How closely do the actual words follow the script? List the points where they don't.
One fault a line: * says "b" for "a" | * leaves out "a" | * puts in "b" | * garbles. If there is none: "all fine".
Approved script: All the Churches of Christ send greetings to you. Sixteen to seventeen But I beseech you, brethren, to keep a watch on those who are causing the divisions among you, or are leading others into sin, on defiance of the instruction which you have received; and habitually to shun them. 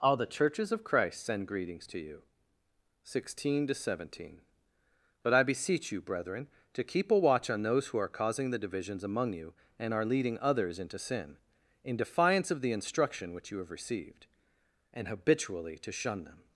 * says "and" for "or"
* says "in" for "on"